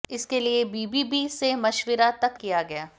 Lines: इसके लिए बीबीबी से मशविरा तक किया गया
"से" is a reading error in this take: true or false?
false